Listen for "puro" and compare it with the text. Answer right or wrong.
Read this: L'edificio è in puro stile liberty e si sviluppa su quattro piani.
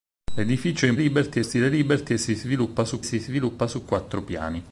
wrong